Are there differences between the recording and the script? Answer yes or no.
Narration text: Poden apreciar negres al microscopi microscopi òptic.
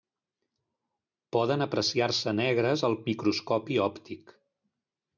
yes